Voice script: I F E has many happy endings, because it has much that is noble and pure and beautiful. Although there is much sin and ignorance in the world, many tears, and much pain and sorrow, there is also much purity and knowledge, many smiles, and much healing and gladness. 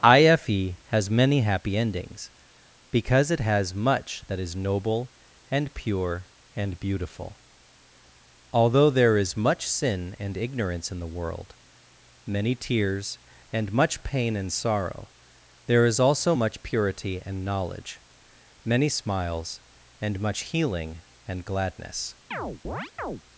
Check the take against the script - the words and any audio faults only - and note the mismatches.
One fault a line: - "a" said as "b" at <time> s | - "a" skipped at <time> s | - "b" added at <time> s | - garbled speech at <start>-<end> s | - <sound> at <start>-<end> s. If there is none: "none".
- chirp at 22.3-23.2 s